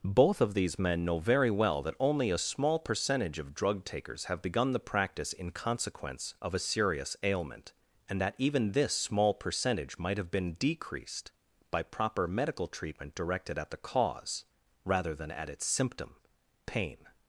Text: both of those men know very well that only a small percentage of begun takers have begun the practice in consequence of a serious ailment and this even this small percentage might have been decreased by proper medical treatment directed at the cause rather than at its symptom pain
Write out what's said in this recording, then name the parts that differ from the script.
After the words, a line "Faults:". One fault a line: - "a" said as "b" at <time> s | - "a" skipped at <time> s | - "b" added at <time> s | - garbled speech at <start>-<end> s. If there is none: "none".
both of these men know very well that only a small percentage of drug takers have begun the practice in consequence of a serious ailment and that even this small percentage might have been decreased by proper medical treatment directed at the cause rather than at its symptom pain
Faults:
- "those" said as "these" at 0.6 s
- "begun" said as "drug" at 3.5 s
- "this" said as "that" at 8.2 s